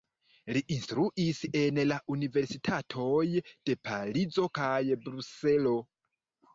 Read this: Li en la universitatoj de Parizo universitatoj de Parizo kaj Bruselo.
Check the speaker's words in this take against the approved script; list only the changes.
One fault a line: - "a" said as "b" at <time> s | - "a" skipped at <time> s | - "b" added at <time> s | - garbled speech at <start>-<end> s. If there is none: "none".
- "instruis" added at 0.8 s
- "universitatoj de Parizo" skipped at 4.5 s